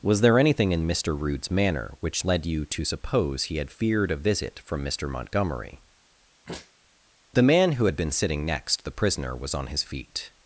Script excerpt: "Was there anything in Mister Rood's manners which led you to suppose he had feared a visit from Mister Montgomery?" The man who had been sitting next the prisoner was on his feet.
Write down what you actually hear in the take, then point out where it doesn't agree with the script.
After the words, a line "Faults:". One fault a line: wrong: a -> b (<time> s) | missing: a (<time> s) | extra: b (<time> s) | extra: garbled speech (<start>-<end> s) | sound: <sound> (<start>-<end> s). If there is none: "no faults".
"Was there anything in Mister Rood's manner which led you to suppose he had feared a visit from Mister Montgomery?" The man who had been sitting next the prisoner was on his feet.
Faults:
wrong: manners -> manner (1.5 s)
sound: sneeze (6.5-6.7 s)